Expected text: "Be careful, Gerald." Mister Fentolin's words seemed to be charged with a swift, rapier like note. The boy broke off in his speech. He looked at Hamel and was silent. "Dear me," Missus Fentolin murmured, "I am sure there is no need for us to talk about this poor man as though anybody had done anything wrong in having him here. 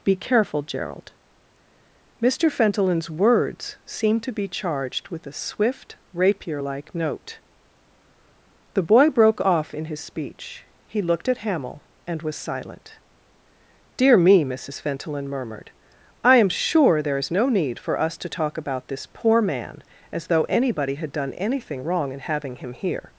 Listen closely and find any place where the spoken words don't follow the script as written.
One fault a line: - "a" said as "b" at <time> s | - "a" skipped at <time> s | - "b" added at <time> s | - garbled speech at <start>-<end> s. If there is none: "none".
none